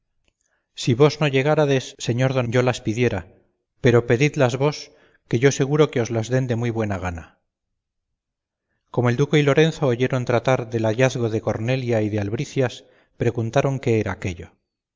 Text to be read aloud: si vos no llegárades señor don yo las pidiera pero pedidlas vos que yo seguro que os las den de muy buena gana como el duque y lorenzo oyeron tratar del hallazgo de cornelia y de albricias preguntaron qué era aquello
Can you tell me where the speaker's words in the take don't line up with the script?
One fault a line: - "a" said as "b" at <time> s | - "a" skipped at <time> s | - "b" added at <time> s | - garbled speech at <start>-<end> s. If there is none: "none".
none